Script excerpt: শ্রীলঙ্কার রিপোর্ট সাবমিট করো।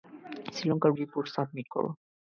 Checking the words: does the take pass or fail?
pass